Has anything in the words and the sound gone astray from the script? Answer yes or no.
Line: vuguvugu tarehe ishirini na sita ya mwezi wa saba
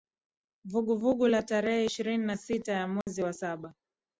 yes